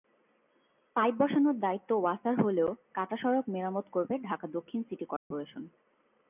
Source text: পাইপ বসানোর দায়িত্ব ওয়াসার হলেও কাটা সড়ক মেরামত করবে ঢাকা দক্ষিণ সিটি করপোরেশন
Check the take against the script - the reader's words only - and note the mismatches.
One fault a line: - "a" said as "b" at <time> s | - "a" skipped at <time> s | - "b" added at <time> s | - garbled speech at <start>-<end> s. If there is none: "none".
none